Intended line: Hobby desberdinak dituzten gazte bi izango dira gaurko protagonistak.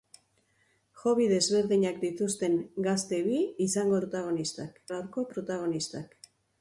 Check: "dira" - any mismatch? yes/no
yes